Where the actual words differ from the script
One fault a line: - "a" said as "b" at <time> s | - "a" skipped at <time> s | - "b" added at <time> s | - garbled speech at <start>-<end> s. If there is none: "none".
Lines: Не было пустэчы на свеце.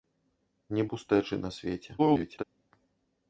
- "было" skipped at 0.8 s
- garbled speech at 2.0-2.4 s